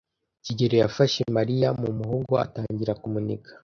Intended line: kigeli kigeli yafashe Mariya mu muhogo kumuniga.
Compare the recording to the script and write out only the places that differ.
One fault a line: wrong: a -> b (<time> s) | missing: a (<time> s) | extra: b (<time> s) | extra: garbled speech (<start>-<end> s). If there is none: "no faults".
missing: kigeli (0.8 s)
extra: atangira (2.4 s)